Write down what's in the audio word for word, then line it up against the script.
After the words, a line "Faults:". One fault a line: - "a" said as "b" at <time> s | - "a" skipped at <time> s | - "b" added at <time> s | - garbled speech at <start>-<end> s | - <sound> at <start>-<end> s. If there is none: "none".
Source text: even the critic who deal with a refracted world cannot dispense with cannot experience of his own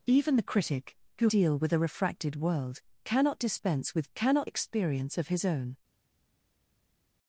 even the critic who deal with a refracted world cannot dispense with cannot experience of his own
Faults:
none